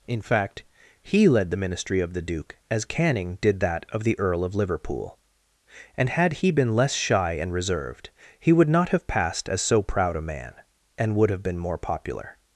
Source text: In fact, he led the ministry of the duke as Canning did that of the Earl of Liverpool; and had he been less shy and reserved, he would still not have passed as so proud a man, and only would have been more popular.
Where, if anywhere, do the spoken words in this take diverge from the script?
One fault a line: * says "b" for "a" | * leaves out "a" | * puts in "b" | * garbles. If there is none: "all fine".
* leaves out "still"
* leaves out "only"